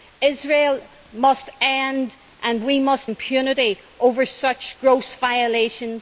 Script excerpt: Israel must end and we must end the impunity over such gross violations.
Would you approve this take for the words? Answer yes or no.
no